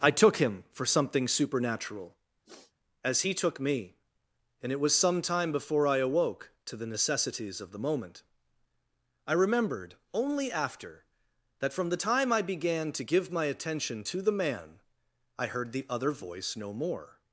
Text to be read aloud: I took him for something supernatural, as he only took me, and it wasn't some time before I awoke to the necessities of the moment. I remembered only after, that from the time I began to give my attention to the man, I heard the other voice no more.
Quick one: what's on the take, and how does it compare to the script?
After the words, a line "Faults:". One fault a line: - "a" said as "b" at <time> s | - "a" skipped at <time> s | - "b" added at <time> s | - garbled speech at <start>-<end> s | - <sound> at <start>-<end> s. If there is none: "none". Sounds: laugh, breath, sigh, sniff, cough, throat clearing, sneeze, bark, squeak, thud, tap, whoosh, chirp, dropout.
I took him for something supernatural, as he took me, and it was some time before I awoke to the necessities of the moment. I remembered only after, that from the time I began to give my attention to the man, I heard the other voice no more.
Faults:
- sniff at 2.4-2.7 s
- "only" skipped at 3.3 s
- "wasn't" said as "was" at 4.8 s